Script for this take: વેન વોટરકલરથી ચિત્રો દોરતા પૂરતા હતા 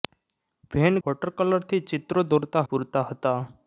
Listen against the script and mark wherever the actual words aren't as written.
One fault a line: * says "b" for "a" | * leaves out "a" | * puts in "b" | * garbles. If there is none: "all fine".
all fine